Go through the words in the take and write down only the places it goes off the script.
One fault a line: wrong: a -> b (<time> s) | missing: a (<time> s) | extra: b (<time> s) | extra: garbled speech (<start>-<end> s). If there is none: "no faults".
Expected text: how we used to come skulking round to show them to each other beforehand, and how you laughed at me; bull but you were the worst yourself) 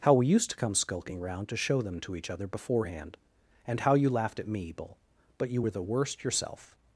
no faults